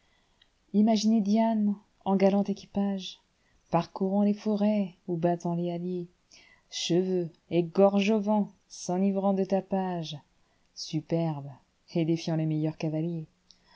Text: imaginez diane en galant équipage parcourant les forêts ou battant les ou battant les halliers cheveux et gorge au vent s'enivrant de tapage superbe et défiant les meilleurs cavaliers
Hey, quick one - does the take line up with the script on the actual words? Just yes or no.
no